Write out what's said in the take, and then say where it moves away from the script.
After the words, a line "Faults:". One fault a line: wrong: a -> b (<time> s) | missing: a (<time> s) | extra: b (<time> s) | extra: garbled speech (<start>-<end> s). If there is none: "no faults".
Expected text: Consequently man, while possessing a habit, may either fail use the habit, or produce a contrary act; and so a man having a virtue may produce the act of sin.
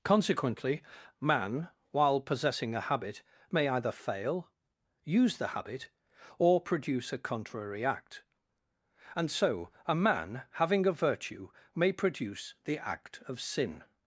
Consequently man, while possessing a habit, may either fail use the habit, or produce a contrary act; and so a man having a virtue may produce the act of sin.
Faults:
no faults